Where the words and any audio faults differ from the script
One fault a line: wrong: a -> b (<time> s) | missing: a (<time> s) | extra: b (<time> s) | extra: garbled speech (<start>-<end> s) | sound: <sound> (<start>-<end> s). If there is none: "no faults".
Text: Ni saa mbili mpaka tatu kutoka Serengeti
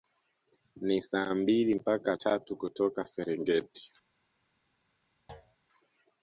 sound: thud (5.3-5.6 s)